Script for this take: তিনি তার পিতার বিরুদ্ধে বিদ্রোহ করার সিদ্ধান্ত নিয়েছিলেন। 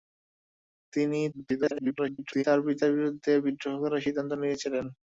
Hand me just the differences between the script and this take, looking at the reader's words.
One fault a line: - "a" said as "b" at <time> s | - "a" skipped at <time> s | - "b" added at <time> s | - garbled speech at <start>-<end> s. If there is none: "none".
- garbled speech at 1.3-2.4 s